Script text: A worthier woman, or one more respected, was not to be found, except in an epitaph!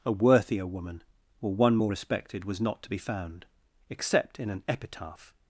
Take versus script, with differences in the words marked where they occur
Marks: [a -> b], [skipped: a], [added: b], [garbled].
A worthier woman, or one more respected, was not to be found, except in an epitaph!